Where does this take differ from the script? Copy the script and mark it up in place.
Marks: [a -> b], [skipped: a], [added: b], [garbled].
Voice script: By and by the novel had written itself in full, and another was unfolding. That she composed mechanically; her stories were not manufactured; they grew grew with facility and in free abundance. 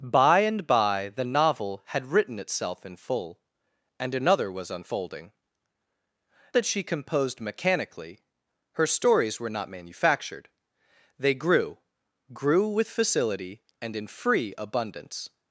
By and by the novel had written itself in full, and another was unfolding. That she composed mechanically; her stories were not manufactured; they grew grew with facility and in free abundance.